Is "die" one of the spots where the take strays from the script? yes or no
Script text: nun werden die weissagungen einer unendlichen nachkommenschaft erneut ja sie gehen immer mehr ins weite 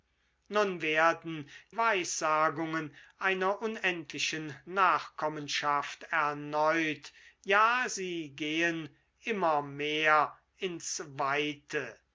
yes